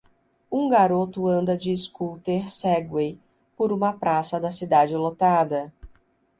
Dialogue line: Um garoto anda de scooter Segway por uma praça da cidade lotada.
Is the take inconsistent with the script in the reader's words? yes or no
no